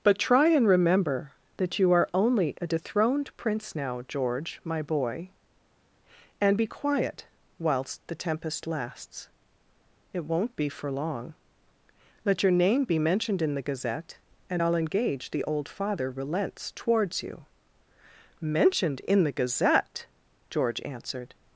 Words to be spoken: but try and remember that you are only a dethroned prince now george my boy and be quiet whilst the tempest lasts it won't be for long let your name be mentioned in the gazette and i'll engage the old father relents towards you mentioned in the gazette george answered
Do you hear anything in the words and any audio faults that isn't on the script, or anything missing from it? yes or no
no